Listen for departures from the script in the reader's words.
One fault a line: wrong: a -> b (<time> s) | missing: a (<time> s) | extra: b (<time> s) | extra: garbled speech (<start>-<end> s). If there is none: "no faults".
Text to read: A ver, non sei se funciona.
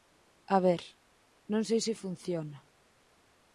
no faults